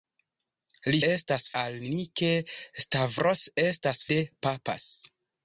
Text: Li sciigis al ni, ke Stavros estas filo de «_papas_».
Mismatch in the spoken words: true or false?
true